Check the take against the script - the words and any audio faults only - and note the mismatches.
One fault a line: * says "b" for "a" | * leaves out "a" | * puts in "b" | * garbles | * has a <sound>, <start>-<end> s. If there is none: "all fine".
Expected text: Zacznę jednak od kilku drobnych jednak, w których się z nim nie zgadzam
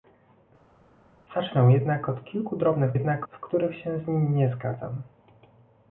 all fine